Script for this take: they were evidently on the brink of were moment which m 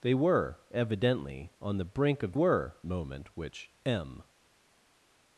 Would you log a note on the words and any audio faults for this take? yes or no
no